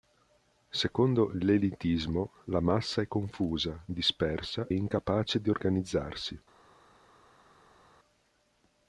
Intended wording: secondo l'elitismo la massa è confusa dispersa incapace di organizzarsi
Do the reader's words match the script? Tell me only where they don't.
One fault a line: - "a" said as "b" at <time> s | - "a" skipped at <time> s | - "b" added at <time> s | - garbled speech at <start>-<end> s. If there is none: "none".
none